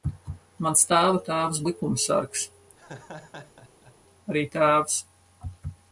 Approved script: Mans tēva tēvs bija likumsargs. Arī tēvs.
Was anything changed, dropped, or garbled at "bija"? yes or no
yes